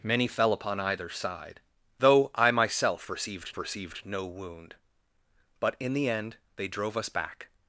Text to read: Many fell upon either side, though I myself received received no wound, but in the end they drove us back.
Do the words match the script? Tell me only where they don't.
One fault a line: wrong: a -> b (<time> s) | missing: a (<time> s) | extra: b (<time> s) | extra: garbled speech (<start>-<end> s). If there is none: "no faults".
no faults